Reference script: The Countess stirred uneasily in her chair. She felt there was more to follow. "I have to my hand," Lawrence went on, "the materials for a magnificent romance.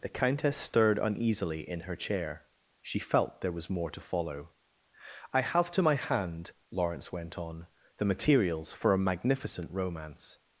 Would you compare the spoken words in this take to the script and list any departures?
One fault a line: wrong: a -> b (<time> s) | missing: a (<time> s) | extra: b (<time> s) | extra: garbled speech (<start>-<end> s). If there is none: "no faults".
no faults